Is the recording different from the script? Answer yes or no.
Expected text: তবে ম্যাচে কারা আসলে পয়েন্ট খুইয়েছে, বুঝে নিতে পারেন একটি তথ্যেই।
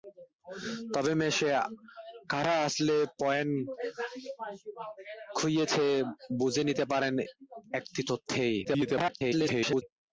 yes